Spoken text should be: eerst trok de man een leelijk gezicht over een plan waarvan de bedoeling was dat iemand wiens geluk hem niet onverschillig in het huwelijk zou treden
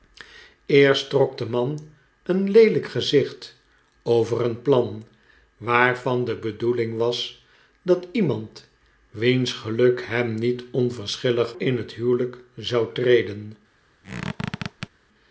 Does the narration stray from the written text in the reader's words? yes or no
no